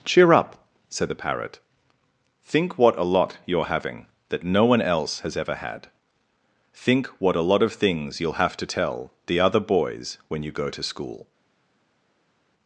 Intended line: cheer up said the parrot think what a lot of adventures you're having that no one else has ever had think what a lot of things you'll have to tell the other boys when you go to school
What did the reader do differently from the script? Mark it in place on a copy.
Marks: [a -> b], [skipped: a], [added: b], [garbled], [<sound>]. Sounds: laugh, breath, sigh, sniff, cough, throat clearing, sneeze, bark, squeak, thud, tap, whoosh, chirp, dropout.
cheer up said the parrot think what a lot [skipped: of adventures] you're having that no one else has ever had think what a lot of things you'll have to tell the other boys when you go to school